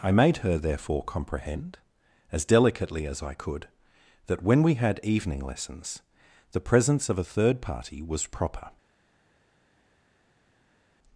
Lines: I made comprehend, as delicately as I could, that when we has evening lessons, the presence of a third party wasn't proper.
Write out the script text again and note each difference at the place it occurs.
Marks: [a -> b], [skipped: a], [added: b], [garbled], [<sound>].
I made [added: her therefore] comprehend, as delicately as I could, that when we [has -> had] evening lessons, the presence of a third party [wasn't -> was] proper.